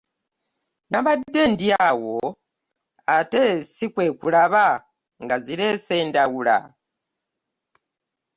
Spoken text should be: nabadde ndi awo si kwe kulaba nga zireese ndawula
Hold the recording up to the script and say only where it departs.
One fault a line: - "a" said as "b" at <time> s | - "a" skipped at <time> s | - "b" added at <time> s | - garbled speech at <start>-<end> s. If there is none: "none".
- "ate" added at 3.2 s